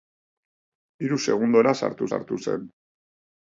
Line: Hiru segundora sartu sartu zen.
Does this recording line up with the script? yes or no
yes